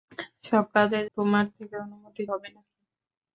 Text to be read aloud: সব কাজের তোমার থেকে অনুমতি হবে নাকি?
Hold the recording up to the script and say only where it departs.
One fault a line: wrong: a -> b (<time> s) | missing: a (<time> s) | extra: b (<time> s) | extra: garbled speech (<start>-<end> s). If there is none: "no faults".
no faults